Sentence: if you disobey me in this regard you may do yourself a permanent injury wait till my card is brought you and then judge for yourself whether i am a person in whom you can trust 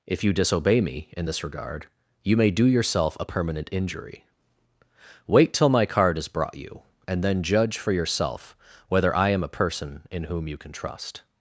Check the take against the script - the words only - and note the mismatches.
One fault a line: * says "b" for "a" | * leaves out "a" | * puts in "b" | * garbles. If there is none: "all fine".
all fine